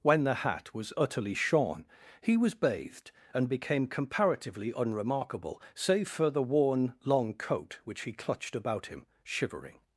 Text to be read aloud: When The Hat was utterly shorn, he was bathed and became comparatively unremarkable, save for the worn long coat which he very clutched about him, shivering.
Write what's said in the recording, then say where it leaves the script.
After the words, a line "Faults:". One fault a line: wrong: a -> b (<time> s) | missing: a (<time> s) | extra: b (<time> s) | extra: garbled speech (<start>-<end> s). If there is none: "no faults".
When The Hat was utterly shorn, he was bathed and became comparatively unremarkable, save for the worn long coat which he clutched about him, shivering.
Faults:
missing: very (8.1 s)